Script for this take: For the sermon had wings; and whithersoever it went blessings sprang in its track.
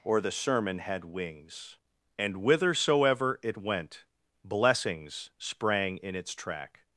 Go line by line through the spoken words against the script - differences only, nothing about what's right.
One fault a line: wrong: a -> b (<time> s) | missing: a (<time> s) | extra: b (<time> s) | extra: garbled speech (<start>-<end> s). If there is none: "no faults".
wrong: For -> Or (0.0 s)